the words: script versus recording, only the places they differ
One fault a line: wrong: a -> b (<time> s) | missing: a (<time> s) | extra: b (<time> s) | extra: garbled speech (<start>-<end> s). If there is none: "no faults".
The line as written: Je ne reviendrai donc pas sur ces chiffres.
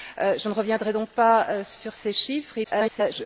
extra: garbled speech (2.6-3.3 s)